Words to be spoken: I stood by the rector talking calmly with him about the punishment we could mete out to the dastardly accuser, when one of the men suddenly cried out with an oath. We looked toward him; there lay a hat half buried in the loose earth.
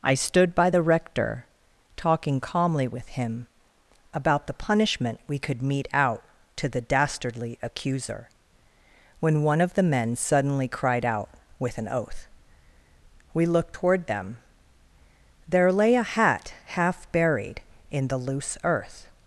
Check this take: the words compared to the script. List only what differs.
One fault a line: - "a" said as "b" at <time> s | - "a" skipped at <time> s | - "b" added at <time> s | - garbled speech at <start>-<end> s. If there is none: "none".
- "him" said as "them" at 14.1 s